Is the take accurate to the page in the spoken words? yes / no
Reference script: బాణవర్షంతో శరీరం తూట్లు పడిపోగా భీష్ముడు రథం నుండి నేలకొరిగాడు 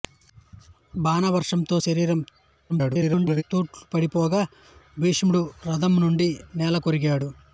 no